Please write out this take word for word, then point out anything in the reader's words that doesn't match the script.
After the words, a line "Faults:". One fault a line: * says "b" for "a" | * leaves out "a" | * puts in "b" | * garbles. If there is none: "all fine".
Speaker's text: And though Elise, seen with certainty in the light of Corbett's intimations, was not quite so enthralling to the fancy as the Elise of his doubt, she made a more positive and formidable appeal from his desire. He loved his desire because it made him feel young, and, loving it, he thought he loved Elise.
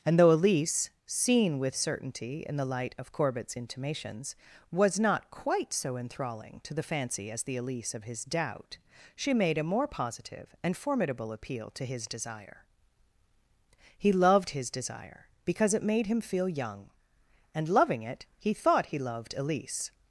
And though Elise, seen with certainty in the light of Corbett's intimations, was not quite so enthralling to the fancy as the Elise of his doubt, she made a more positive and formidable appeal to his desire. He loved his desire because it made him feel young, and, loving it, he thought he loved Elise.
Faults:
* says "to" for "from"